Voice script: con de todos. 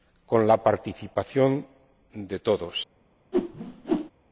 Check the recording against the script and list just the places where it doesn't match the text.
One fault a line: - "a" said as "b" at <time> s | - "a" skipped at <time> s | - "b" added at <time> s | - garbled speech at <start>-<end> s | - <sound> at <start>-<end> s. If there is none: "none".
- "la participación" added at 0.5 s
- whoosh at 3.3-4.1 s